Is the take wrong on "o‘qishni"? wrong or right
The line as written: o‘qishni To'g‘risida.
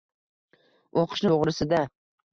right